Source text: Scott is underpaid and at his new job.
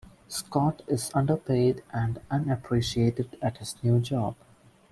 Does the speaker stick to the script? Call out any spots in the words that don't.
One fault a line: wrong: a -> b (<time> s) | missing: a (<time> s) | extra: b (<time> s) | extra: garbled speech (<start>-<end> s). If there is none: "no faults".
extra: unappreciated (2.3 s)